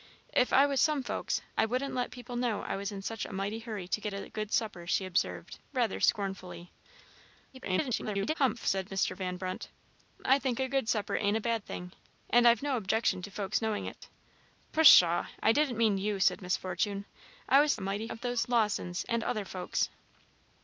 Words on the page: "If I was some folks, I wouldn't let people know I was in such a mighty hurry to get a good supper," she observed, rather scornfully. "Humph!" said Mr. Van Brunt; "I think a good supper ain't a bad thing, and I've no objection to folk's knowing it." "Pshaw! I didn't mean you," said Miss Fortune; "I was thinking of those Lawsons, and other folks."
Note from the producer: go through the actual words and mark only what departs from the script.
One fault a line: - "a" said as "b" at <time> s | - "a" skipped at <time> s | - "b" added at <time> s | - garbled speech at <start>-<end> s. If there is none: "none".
- garbled speech at 7.5-8.3 s
- "thinking" said as "mighty" at 17.8 s